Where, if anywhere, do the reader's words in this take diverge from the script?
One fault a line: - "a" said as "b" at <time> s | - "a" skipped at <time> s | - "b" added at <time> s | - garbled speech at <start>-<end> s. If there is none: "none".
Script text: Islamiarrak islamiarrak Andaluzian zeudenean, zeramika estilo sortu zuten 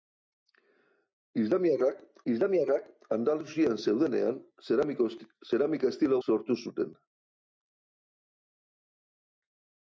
none